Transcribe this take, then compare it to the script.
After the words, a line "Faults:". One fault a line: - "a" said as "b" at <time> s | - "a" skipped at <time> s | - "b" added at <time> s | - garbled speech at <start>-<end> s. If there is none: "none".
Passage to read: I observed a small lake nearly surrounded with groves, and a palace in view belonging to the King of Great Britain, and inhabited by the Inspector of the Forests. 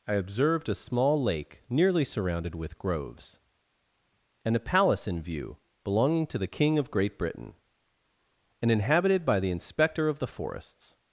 I observed a small lake nearly surrounded with groves, and a palace in view belonging to the King of Great Britain, and inhabited by the Inspector of the Forests.
Faults:
none